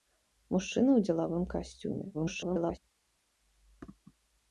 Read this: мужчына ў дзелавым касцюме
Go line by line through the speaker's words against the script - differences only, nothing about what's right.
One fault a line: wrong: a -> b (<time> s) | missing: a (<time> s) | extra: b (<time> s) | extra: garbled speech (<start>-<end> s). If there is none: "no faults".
extra: garbled speech (2.1-2.8 s)